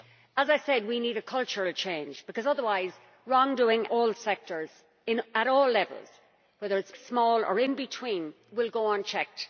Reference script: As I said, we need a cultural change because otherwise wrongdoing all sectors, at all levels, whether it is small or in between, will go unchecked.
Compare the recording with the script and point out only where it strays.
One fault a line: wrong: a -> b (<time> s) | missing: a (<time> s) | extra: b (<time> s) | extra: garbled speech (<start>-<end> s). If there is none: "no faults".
no faults